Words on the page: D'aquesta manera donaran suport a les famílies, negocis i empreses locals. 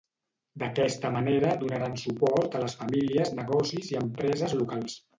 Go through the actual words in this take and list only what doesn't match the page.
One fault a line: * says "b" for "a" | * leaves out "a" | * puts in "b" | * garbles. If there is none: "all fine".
all fine